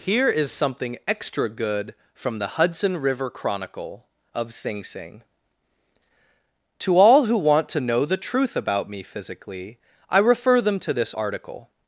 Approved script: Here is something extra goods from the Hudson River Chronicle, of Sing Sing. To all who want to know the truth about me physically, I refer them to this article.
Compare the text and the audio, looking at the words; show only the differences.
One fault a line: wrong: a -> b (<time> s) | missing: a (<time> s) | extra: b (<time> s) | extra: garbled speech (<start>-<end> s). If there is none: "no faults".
wrong: goods -> good (1.5 s)